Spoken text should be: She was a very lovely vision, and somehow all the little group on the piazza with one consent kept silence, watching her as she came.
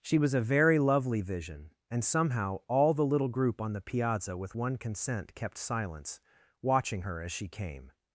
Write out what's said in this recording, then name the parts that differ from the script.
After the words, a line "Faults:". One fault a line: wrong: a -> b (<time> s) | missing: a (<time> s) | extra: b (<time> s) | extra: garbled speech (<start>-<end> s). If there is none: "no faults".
She was a very lovely vision, and somehow all the little group on the piazza with one consent kept silence, watching her as she came.
Faults:
no faults